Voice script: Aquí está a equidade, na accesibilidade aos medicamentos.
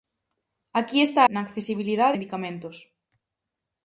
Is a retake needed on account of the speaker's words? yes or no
yes